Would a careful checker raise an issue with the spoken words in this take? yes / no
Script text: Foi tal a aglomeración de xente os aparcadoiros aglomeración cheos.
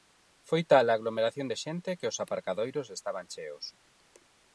yes